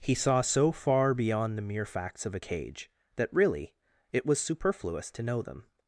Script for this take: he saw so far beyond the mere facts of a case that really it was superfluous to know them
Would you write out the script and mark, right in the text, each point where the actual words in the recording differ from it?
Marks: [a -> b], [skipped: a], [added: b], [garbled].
he saw so far beyond the mere facts of a [case -> cage] that really it was superfluous to know them